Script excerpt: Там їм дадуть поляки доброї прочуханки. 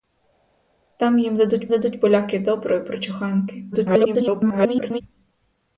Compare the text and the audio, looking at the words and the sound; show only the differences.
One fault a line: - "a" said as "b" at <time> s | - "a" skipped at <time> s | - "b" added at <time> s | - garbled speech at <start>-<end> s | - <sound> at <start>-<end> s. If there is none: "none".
- "дадуть" added at 1.7 s
- garbled speech at 3.7-5.0 s